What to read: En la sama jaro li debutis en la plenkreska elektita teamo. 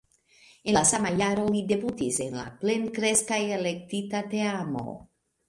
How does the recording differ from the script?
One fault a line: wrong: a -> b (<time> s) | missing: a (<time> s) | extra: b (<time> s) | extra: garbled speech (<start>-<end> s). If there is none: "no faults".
no faults